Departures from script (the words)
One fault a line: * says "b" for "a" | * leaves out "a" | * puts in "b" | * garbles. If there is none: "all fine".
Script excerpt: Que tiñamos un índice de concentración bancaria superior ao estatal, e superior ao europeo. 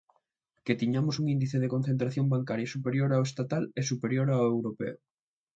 all fine